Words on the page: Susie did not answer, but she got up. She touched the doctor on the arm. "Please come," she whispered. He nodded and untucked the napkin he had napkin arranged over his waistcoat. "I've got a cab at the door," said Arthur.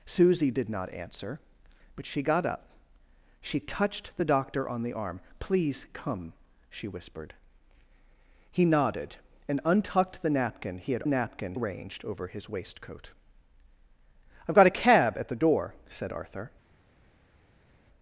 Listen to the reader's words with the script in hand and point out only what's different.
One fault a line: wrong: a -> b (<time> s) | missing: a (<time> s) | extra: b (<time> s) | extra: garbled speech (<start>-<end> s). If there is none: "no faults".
no faults